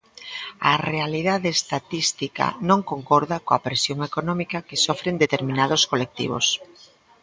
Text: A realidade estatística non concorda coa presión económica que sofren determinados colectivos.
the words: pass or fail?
pass